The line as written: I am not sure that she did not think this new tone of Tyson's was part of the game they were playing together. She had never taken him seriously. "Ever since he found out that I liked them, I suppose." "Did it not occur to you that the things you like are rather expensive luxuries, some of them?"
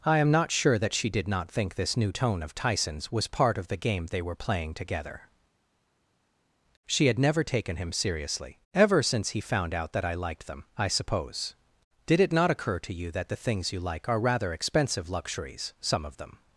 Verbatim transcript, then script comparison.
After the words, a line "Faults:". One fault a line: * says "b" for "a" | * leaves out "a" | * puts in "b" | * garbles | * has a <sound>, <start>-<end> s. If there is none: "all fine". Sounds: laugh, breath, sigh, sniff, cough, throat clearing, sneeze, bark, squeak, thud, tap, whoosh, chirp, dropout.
I am not sure that she did not think this new tone of Tyson's was part of the game they were playing together. She had never taken him seriously. "Ever since he found out that I liked them, I suppose." "Did it not occur to you that the things you like are rather expensive luxuries, some of them?"
Faults:
all fine